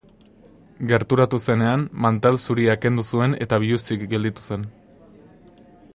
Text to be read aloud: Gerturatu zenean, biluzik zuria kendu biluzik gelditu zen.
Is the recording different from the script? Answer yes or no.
yes